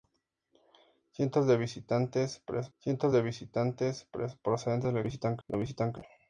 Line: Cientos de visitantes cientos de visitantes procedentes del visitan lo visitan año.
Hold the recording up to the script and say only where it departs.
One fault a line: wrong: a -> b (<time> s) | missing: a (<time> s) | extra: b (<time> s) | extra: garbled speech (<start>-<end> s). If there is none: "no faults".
no faults